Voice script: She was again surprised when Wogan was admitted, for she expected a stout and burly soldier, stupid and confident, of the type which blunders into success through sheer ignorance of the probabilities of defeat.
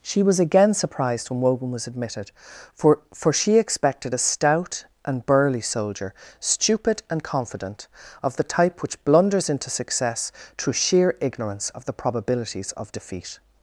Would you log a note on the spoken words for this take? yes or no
yes